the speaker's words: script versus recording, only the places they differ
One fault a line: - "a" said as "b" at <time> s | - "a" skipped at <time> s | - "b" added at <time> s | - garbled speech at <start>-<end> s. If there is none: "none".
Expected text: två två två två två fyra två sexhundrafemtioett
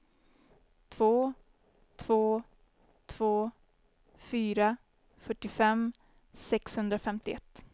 - "två två" skipped at 3.5 s
- "två" said as "fyrtiofem" at 5.2 s